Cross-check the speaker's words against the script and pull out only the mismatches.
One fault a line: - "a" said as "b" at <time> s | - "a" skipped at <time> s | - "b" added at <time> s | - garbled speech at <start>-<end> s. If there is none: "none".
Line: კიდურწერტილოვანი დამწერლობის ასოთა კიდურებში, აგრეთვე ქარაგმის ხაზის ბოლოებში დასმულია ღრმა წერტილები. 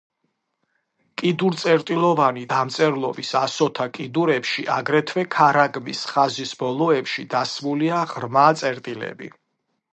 none